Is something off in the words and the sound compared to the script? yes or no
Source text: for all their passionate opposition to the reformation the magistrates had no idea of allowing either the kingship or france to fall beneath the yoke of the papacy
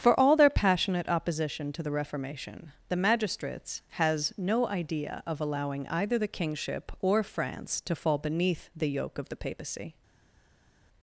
yes